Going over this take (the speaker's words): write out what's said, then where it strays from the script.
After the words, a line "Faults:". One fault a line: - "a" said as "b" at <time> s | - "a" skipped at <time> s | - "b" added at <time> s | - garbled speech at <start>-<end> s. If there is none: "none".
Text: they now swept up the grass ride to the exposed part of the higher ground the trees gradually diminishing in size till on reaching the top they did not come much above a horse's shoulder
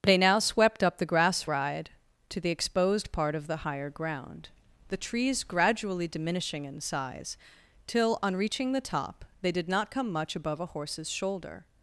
they now swept up the grass ride to the exposed part of the higher ground the trees gradually diminishing in size till on reaching the top they did not come much above a horse's shoulder
Faults:
none